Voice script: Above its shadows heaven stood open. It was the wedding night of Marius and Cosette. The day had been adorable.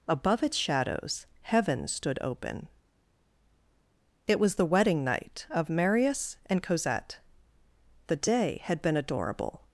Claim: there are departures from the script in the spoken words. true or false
false